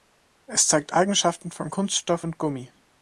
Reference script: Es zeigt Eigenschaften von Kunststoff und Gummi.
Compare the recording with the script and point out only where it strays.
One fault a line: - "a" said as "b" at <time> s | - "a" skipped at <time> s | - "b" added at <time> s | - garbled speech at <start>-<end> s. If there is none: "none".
none